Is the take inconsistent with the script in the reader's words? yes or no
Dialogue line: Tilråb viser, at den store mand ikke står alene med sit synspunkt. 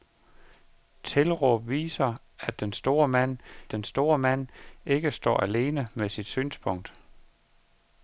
yes